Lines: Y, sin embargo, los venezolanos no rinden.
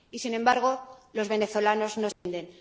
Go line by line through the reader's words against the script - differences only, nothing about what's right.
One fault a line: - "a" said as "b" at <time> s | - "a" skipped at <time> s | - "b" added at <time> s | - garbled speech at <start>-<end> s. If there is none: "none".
none